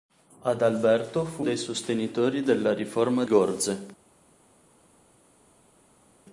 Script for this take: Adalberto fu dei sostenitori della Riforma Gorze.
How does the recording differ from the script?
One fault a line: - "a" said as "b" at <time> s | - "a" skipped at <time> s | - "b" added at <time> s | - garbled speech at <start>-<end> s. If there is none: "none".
none